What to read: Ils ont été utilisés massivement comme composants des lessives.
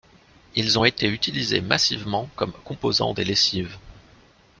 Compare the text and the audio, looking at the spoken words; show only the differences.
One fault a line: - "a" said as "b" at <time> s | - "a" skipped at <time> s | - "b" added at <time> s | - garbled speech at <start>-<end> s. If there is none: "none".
none